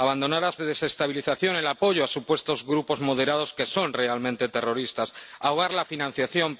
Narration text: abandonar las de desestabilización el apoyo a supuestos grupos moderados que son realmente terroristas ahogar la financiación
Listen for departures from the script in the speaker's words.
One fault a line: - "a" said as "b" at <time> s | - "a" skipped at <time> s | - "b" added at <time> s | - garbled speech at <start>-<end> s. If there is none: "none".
none